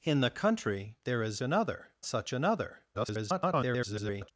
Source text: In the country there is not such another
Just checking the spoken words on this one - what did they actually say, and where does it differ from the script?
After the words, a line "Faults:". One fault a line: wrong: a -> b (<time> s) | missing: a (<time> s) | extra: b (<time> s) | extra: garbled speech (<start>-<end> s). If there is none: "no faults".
In the country there is another such another [garbled]
Faults:
wrong: not -> another (1.4 s)
extra: garbled speech (2.9-4.3 s)